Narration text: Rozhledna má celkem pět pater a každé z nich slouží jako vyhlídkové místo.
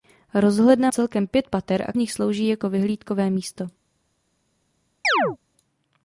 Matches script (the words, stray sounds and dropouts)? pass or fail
fail